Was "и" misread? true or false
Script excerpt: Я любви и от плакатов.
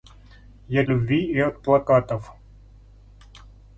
false